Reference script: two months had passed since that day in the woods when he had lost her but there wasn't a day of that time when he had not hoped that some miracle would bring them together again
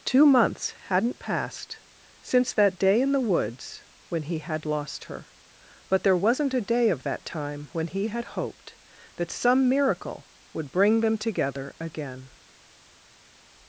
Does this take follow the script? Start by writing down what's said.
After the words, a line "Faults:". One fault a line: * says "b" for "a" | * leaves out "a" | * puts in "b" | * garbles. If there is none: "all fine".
two months hadn't passed since that day in the woods when he had lost her but there wasn't a day of that time when he had hoped that some miracle would bring them together again
Faults:
* says "hadn't" for "had"
* leaves out "not"